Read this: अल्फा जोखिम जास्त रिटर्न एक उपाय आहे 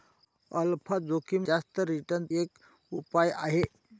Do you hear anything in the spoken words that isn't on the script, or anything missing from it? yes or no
no